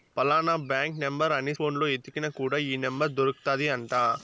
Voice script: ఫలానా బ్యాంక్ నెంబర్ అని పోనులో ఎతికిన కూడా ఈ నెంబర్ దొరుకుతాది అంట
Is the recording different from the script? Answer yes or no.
no